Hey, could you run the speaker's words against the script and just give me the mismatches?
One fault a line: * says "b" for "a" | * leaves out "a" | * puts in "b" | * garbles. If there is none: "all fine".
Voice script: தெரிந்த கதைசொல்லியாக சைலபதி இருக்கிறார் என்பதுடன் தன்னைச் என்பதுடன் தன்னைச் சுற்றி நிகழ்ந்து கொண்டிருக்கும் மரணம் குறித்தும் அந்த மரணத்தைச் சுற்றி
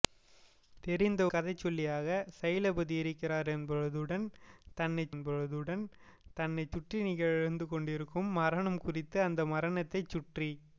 all fine